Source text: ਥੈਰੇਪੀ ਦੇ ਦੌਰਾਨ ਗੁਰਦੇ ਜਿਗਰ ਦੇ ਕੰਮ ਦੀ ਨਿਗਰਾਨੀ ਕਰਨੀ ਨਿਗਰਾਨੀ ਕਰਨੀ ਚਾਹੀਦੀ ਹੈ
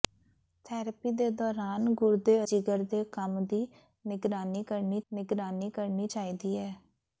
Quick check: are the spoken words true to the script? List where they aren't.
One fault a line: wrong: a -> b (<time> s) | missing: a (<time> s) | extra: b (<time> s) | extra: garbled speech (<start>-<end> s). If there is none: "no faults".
no faults